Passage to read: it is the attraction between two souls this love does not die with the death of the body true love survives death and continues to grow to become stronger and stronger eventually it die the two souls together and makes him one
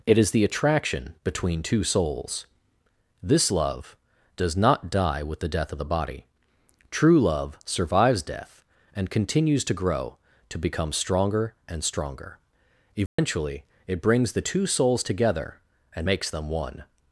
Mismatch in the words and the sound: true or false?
true